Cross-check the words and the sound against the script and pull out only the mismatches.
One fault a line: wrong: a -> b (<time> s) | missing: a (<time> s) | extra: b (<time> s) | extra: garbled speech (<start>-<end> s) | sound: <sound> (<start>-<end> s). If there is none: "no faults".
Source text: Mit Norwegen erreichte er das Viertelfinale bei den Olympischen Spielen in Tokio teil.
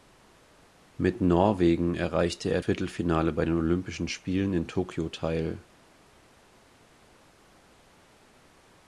missing: das (2.6 s)